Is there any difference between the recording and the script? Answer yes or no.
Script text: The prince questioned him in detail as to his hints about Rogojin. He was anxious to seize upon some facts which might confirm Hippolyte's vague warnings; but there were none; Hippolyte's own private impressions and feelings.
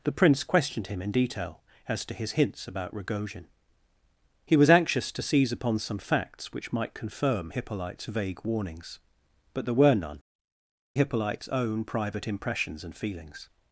no